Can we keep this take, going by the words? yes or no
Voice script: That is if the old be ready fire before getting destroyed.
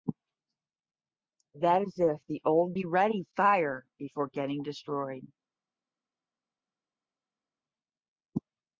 yes